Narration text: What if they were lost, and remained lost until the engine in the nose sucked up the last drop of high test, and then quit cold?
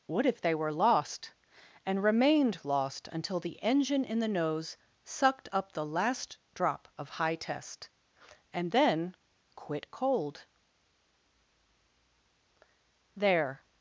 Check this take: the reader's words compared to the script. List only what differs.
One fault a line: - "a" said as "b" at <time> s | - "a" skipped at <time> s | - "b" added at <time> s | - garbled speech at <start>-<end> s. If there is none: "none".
- "There" added at 13.2 s